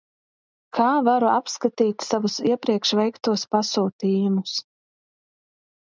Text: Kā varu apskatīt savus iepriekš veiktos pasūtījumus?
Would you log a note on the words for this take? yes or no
no